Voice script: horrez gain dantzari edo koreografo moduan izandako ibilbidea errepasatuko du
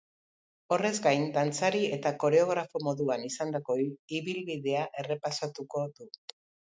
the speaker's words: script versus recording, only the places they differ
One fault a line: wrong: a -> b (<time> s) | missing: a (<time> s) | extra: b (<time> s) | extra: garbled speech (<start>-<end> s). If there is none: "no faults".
wrong: edo -> eta (1.9 s)